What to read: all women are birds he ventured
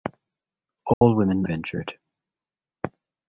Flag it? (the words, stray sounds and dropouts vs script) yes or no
yes